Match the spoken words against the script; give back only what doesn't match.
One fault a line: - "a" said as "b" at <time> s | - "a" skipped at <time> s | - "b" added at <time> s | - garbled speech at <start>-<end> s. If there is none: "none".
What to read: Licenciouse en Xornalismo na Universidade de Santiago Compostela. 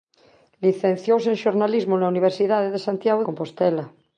none